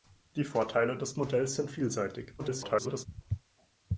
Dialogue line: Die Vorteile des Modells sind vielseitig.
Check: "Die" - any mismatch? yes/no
no